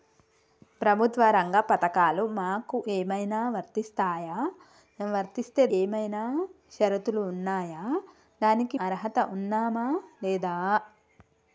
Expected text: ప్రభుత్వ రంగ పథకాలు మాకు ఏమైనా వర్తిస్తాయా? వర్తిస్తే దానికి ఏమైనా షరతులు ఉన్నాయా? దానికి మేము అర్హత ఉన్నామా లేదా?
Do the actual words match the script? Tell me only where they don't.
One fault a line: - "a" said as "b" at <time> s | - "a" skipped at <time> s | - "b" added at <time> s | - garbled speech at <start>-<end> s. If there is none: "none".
- "దానికి" skipped at 5.7 s
- "మేము" skipped at 8.8 s